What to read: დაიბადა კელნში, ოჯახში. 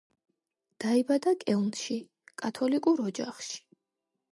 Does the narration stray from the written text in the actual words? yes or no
yes